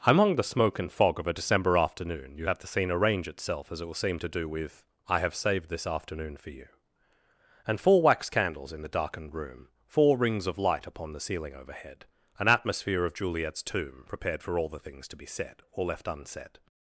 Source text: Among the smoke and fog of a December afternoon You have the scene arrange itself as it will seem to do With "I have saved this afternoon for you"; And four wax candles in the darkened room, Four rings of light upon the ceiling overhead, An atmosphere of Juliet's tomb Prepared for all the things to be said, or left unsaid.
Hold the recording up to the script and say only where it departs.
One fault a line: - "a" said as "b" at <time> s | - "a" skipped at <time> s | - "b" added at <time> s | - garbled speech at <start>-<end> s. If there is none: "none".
none